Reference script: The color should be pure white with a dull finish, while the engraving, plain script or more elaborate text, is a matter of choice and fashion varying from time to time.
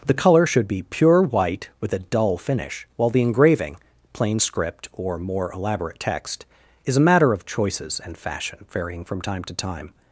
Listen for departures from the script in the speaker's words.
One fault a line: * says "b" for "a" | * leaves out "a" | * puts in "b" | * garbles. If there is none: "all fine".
* says "choices" for "choice"